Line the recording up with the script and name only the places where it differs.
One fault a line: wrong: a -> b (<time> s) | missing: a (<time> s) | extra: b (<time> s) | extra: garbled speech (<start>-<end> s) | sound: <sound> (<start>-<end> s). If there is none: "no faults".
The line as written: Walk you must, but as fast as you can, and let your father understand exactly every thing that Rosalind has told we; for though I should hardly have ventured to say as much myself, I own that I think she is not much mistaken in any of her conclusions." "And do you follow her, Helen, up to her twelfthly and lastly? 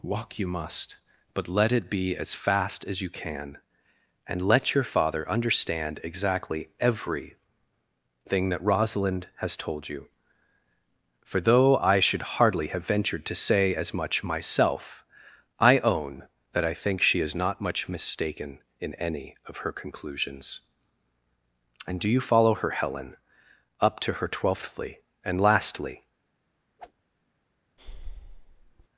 extra: let it be (1.5 s)
wrong: we -> you (9.9 s)
sound: whoosh (26.8-26.9 s)
sound: breath (27.8-28.9 s)